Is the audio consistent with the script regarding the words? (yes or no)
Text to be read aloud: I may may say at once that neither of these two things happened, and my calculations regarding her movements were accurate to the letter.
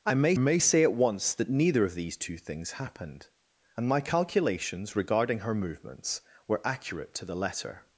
yes